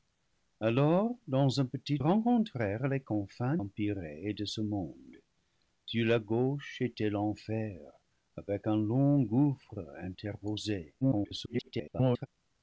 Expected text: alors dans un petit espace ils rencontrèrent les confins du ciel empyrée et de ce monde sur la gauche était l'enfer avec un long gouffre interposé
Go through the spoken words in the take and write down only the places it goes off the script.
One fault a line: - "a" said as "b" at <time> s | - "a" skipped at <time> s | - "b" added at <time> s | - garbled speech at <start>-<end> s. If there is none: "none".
- "espace ils" skipped at 2.0 s
- "du ciel" skipped at 3.6 s
- garbled speech at 11.0-12.3 s